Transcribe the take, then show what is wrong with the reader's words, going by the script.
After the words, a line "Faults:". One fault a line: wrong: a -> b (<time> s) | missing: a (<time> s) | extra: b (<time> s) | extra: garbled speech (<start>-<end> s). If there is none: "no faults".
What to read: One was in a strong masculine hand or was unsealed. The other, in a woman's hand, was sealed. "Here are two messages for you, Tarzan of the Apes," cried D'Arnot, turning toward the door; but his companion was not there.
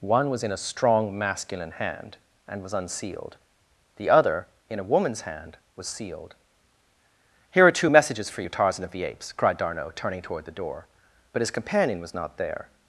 One was in a strong masculine hand and was unsealed. The other, in a woman's hand, was sealed. "Here are two messages for you, Tarzan of the Apes," cried D'Arnot, turning toward the door; but his companion was not there.
Faults:
wrong: or -> and (2.5 s)